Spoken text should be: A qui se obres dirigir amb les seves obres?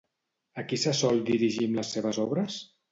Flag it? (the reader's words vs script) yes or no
yes